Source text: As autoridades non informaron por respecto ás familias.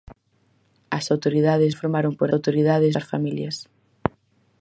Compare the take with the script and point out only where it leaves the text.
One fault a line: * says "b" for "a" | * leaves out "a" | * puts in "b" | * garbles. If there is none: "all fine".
* leaves out "non"
* says "autoridades" for "respecto"